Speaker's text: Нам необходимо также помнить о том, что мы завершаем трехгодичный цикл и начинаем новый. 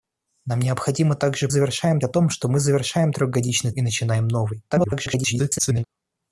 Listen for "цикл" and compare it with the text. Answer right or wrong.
wrong